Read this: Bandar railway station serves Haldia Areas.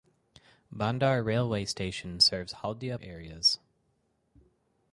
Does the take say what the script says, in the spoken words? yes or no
yes